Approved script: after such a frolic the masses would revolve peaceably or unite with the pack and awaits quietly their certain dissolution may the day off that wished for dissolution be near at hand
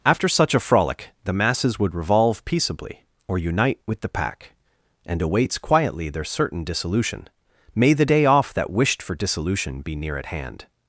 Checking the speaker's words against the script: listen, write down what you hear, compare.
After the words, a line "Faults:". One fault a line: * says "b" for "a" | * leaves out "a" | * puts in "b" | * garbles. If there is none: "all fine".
after such a frolic the masses would revolve peaceably or unite with the pack and awaits quietly their certain dissolution may the day off that wished for dissolution be near at hand
Faults:
all fine